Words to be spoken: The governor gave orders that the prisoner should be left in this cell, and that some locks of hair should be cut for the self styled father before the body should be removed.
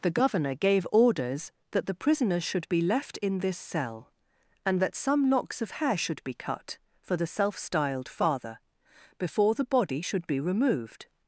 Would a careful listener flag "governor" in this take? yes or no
no